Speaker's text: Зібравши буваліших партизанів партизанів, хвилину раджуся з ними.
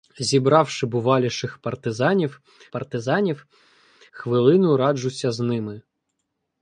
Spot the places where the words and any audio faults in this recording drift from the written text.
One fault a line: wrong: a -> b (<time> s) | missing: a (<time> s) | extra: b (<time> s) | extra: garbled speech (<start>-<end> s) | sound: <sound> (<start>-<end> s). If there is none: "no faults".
no faults